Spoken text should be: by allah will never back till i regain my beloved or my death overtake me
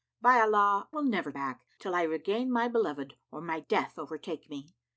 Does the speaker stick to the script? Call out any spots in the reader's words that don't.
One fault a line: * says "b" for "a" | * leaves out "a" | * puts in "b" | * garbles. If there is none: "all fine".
all fine